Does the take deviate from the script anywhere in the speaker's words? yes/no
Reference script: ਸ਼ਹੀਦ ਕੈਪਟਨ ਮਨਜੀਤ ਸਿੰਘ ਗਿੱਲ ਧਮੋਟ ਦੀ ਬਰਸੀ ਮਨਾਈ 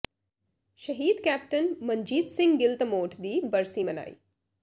no